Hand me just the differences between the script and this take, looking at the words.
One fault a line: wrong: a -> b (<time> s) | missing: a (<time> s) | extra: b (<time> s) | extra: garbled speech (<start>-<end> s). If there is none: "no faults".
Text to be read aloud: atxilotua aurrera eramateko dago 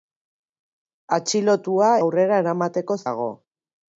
no faults